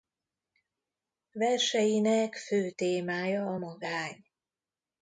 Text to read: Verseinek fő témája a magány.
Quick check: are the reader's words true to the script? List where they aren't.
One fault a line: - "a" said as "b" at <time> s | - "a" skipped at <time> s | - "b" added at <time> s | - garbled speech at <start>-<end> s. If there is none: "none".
none